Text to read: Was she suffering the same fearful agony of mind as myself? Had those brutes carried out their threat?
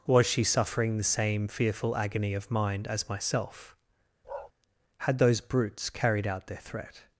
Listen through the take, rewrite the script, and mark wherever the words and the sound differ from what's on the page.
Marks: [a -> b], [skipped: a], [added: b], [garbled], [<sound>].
Was she suffering the same fearful agony of mind as myself? [bark] Had those brutes carried out their threat?